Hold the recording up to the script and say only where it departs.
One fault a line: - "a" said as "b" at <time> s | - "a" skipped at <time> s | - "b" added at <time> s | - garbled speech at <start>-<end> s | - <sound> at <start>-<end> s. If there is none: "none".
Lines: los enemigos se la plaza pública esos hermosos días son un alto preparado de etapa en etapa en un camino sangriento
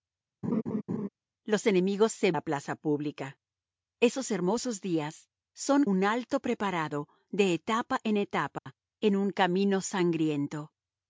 - laugh at 0.4-1.1 s
- dropout at 8.6-8.7 s